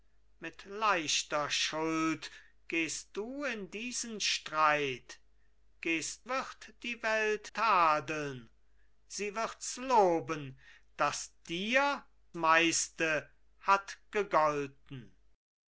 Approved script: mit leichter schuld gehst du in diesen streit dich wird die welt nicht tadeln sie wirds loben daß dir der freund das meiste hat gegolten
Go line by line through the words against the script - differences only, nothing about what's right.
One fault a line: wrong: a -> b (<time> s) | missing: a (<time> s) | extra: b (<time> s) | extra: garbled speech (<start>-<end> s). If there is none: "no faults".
wrong: dich -> gehst (5.8 s)
missing: nicht (7.5 s)
missing: der freund das (12.0 s)